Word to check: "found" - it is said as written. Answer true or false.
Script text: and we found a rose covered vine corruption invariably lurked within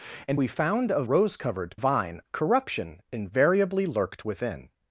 true